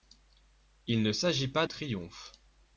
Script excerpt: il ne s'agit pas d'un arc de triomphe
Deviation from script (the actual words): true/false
true